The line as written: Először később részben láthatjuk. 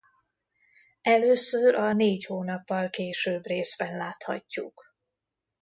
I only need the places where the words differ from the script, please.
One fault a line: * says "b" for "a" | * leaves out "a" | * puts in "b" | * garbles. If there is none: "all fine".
* puts in "a Négy hónappal"